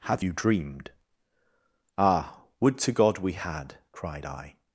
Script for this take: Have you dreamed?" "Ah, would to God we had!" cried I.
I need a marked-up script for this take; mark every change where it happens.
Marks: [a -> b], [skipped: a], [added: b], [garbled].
Have you dreamed?" "Ah, would to God we had!" cried I.